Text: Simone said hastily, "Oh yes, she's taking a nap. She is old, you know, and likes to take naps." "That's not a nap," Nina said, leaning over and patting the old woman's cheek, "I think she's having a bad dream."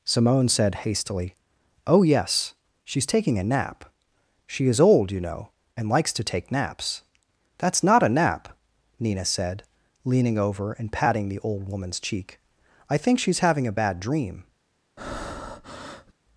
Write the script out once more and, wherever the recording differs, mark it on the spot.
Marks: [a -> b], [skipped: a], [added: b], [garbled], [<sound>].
Simone said hastily, "Oh yes, she's taking a nap. She is old, you know, and likes to take naps." "That's not a nap," Nina said, leaning over and patting the old woman's cheek, "I think she's having a bad dream." [breath]